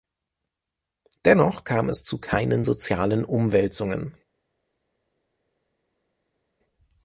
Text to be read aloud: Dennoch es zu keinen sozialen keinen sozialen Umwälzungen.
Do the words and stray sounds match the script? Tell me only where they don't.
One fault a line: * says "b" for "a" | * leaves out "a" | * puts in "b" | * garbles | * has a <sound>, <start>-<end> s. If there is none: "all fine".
* puts in "kam"
* leaves out "keinen sozialen"